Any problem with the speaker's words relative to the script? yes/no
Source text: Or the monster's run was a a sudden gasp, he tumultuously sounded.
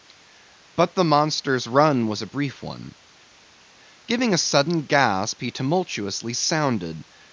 yes